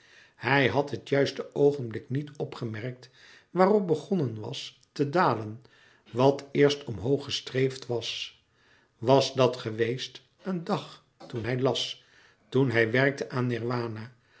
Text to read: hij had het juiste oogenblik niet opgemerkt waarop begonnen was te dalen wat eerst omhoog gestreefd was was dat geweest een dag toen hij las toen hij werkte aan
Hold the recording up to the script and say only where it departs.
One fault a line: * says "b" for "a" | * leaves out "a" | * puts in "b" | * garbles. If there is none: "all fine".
all fine